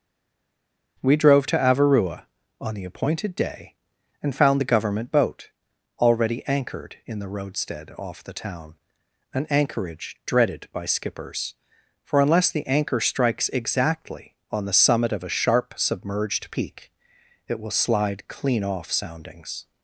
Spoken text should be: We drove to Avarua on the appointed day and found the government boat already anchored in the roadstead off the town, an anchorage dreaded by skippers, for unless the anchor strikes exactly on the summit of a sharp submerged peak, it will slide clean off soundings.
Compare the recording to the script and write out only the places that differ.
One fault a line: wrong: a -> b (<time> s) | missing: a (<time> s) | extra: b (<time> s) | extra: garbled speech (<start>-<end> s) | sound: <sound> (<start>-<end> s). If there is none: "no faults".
no faults